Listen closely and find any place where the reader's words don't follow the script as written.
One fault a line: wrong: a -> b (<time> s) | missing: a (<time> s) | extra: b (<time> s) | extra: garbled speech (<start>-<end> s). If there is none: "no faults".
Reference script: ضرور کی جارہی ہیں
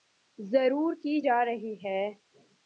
no faults